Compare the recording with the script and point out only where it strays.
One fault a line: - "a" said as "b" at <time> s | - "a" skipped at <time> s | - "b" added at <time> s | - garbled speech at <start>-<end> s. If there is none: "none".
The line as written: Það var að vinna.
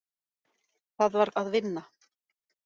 none